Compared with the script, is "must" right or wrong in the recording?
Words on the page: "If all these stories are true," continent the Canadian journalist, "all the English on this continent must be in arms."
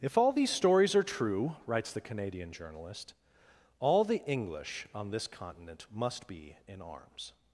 right